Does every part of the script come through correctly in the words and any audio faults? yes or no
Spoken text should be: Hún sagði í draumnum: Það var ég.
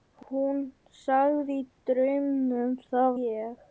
no